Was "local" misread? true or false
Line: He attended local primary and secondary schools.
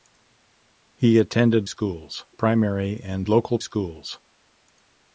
true